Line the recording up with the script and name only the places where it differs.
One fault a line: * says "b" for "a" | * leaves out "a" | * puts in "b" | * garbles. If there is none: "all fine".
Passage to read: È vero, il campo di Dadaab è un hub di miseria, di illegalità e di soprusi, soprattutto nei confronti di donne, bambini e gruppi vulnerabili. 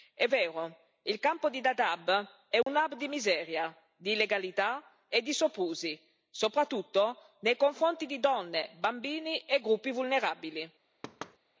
all fine